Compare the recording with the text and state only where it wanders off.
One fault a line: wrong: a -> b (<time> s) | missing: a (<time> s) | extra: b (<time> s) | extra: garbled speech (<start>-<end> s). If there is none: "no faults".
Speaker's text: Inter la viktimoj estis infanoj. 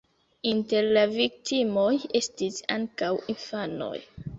extra: ankaŭ (2.8 s)